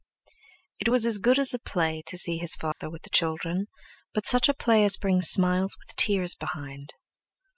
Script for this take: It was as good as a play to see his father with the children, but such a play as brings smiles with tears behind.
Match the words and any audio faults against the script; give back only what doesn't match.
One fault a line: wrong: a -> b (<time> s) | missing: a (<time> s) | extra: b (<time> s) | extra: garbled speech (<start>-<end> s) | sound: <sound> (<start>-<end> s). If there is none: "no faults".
sound: dropout (2.7-2.8 s)